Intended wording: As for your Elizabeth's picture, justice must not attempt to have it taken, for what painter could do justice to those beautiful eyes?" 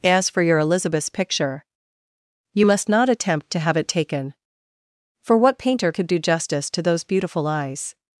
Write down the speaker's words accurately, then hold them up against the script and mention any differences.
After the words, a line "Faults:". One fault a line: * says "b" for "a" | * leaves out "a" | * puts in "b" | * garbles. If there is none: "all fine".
As for your Elizabeth's picture, you must not attempt to have it taken, for what painter could do justice to those beautiful eyes?"
Faults:
* says "you" for "justice"